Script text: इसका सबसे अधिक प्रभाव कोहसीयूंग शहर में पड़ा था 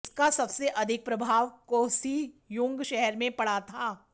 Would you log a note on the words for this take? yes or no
no